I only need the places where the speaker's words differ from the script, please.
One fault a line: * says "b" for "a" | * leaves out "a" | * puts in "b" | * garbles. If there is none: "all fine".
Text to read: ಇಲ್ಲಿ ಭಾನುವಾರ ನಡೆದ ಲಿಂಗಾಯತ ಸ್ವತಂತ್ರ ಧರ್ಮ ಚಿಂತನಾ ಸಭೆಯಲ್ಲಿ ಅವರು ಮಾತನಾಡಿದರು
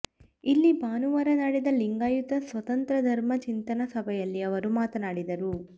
all fine